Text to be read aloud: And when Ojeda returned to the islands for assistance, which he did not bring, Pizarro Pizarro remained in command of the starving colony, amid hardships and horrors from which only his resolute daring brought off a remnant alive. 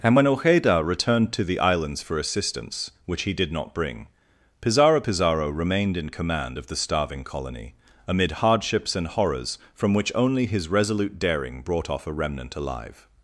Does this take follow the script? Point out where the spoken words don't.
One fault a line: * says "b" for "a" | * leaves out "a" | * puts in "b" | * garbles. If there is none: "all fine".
all fine